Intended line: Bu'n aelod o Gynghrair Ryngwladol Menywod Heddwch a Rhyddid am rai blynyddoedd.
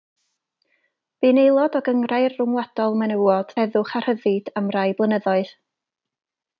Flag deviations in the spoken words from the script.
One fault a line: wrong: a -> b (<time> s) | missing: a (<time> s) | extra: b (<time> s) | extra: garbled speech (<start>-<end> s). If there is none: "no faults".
no faults